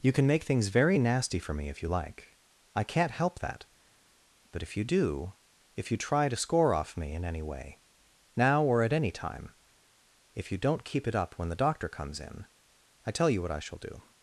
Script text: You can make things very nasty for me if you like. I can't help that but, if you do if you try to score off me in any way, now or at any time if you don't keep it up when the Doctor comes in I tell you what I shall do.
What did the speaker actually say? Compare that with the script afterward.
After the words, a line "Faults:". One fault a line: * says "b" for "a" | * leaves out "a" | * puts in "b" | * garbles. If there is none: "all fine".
You can make things very nasty for me if you like. I can't help that but, if you do if you try to score off me in any way, now or at any time if you don't keep it up when the Doctor comes in I tell you what I shall do.
Faults:
all fine